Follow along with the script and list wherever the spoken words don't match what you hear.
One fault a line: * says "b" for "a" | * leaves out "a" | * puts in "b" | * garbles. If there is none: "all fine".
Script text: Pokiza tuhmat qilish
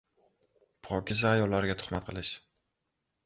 * puts in "ayollarga"